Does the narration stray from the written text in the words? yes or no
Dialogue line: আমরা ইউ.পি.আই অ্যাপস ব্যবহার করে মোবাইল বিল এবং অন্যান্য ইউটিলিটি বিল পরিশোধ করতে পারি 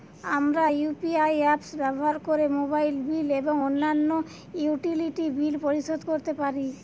no